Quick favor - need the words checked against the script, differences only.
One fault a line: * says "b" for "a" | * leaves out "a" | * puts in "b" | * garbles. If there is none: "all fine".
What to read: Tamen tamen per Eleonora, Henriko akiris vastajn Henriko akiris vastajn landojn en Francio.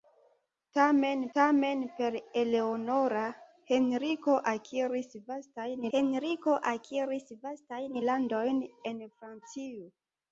all fine